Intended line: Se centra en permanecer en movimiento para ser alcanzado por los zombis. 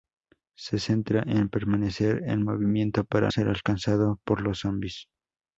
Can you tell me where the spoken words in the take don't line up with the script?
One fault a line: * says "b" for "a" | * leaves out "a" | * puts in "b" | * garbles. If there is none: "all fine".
all fine